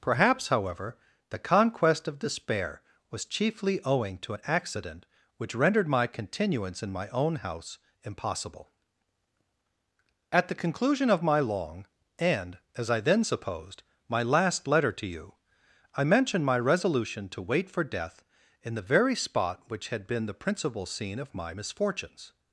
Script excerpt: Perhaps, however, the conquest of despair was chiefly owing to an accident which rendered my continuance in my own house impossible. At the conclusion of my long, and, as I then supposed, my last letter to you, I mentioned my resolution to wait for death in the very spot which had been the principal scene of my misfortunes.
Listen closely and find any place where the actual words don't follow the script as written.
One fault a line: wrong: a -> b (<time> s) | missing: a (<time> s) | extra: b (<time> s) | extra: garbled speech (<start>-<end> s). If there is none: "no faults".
no faults